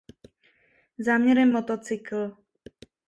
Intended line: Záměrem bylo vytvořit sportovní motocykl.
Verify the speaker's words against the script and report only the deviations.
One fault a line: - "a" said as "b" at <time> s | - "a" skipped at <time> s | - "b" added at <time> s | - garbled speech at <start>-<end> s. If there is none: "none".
- "bylo vytvořit sportovní" skipped at 1.5 s